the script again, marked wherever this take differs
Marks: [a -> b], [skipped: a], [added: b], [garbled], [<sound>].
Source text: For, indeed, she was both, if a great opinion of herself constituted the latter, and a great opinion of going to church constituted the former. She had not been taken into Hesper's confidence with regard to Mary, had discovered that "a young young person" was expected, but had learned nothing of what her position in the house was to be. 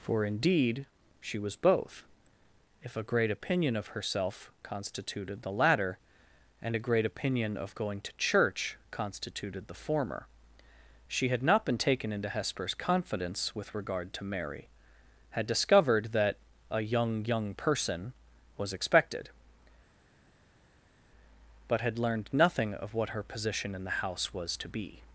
For, indeed, she was both, if a great opinion of herself constituted the latter, and a great opinion of going to church constituted the former. She had not been taken into Hesper's confidence with regard to Mary, had discovered that "a young young person" was expected, but had learned nothing of what her position in the house was to be.